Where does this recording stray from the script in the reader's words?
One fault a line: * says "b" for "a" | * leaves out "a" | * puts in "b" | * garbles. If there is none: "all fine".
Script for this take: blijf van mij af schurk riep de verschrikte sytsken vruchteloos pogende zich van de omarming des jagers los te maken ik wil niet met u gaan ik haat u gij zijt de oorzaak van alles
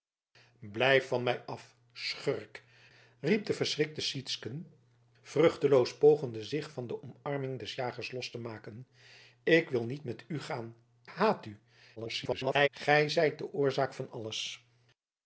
* leaves out "ik"
* garbles